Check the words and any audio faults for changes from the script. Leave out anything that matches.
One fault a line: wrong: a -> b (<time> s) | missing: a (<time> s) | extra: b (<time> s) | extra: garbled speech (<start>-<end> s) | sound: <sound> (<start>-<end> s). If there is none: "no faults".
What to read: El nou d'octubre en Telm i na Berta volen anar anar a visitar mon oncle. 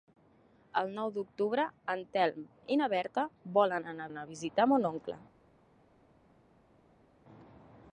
no faults